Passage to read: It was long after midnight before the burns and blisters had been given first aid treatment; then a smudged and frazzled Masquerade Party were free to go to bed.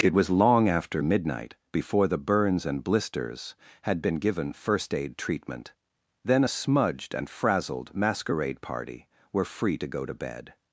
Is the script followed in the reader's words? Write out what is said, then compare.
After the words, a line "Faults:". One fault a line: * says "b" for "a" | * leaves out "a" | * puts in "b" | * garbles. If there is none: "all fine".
It was long after midnight before the burns and blisters had been given first aid treatment; then a smudged and frazzled Masquerade Party were free to go to bed.
Faults:
all fine